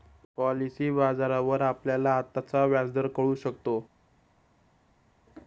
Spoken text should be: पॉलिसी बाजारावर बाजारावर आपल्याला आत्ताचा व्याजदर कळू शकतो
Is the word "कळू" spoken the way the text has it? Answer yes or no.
yes